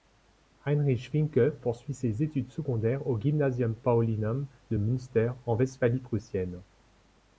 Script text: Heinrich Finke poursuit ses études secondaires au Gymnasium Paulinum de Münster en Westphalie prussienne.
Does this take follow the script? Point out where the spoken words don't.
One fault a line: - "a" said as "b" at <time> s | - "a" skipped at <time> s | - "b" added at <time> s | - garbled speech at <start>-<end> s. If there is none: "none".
none